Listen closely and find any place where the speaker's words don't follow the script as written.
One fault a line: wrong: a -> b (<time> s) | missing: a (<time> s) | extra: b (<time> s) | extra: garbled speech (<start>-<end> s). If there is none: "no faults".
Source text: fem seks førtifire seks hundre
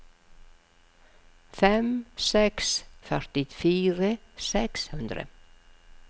no faults